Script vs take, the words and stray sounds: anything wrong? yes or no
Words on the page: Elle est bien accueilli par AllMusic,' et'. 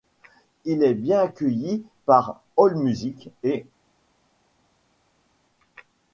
yes